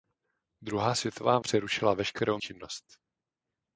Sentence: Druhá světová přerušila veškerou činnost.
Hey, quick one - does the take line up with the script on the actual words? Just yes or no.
yes